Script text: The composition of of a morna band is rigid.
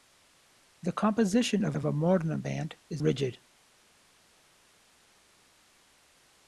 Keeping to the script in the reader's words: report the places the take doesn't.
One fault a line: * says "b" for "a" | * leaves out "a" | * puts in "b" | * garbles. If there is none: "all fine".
all fine